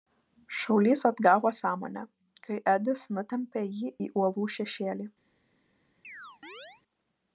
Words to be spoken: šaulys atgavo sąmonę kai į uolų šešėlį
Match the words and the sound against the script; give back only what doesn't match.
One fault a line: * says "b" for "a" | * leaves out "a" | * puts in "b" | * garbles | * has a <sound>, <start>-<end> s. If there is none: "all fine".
* puts in "edis nutempė jį"
* has a chirp, 6.0-6.8 s